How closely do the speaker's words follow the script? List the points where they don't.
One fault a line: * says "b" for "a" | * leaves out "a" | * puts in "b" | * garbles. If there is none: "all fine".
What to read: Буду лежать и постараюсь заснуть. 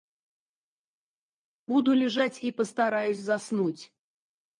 all fine